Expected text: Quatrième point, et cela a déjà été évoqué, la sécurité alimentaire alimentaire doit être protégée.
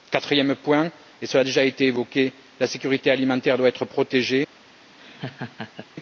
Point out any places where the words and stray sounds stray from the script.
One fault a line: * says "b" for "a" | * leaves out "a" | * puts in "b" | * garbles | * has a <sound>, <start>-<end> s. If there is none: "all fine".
* leaves out "alimentaire"
* has a laugh, 5.0-5.9 s